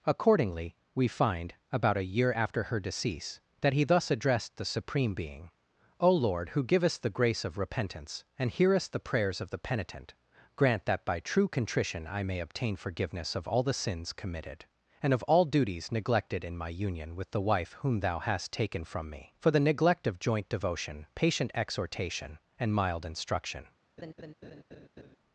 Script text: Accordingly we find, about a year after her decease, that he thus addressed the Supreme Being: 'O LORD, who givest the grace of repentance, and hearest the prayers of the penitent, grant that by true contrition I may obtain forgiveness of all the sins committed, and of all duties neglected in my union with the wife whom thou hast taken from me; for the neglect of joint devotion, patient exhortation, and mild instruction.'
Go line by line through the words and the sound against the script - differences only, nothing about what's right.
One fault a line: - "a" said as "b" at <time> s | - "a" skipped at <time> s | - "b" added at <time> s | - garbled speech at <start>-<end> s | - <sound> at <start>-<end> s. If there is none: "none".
- laugh at 24.0-25.2 s